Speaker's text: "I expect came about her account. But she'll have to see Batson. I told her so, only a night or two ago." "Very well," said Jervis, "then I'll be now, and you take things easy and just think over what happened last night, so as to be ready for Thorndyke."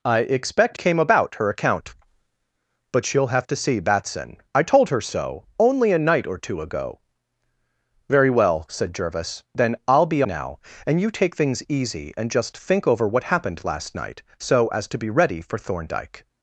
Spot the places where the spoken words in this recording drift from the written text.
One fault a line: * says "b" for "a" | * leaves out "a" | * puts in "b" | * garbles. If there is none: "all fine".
all fine